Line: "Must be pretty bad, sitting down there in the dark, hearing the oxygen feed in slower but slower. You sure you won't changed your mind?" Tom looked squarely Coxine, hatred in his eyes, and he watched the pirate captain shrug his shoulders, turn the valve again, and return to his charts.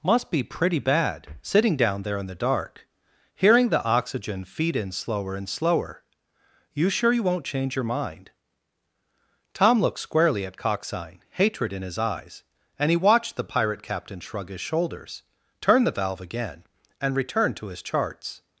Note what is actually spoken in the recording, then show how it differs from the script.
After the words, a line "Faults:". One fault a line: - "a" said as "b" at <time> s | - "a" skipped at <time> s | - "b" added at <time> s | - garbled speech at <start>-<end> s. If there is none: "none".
"Must be pretty bad, sitting down there in the dark, hearing the oxygen feed in slower and slower. You sure you won't change your mind?" Tom looked squarely at Coxine, hatred in his eyes, and he watched the pirate captain shrug his shoulders, turn the valve again, and return to his charts.
Faults:
- "but" said as "and" at 5.3 s
- "changed" said as "change" at 7.5 s
- "at" added at 10.4 s